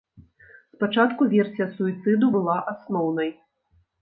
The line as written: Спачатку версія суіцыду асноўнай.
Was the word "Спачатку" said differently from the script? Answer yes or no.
no